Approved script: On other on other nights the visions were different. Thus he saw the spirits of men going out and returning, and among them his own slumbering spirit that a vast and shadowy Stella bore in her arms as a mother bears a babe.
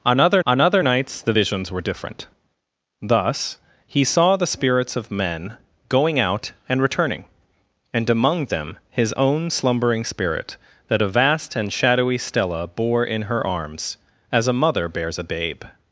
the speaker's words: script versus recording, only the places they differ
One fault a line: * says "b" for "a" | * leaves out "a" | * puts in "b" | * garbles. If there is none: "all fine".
all fine